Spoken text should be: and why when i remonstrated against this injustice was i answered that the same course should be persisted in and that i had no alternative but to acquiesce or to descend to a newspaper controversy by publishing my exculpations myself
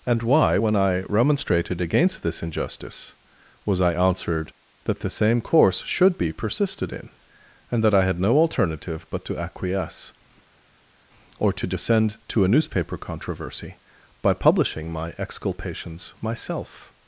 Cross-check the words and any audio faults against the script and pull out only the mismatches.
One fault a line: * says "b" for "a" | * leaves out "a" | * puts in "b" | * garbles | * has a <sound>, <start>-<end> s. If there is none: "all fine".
all fine